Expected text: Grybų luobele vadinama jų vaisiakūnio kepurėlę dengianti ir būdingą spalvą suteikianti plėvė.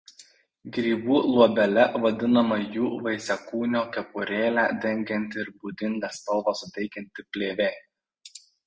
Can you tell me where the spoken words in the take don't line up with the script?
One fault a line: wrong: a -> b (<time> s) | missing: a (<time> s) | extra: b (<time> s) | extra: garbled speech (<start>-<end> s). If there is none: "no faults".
no faults